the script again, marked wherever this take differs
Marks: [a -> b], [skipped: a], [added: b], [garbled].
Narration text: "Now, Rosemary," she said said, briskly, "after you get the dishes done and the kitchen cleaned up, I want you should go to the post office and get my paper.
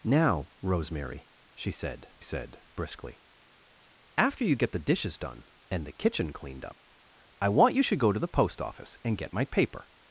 "Now, Rosemary," she said said, briskly, "after you get the dishes done and the kitchen cleaned up, I want you should go to the post office and get my paper.